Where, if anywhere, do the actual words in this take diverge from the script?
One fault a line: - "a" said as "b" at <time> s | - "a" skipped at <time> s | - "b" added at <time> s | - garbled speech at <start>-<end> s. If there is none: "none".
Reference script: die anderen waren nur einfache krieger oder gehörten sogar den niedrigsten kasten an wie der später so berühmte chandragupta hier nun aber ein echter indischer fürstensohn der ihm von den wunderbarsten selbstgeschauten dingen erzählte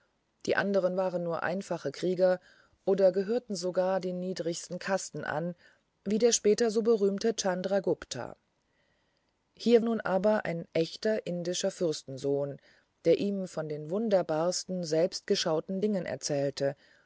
none